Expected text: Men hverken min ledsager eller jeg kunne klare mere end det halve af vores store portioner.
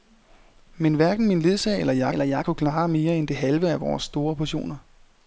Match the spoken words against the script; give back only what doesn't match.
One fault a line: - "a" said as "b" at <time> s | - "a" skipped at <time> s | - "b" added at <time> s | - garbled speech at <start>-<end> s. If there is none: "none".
- "eller jeg" added at 2.1 s